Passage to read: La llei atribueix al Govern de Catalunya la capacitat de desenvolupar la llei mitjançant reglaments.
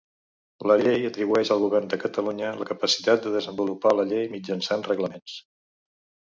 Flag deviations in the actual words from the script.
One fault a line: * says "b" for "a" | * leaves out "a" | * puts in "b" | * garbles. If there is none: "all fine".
all fine